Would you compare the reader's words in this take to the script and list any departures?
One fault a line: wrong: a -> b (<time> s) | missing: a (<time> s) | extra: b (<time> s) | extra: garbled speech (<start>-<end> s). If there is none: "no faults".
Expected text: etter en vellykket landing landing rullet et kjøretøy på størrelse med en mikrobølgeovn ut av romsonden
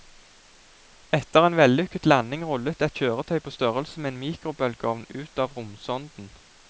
missing: landing (2.5 s)